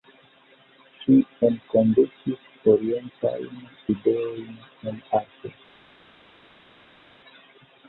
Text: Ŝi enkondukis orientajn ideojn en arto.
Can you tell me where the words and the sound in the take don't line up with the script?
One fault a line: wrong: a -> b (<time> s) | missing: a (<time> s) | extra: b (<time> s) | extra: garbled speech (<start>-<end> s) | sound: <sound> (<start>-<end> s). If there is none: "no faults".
no faults